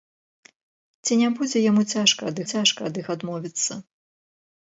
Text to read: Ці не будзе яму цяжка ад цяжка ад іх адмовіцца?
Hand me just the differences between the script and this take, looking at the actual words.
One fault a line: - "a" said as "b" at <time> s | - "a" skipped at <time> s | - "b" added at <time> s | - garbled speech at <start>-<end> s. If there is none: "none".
none